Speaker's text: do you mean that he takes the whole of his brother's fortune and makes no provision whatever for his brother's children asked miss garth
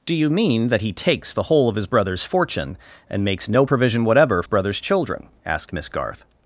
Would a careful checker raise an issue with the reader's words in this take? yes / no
yes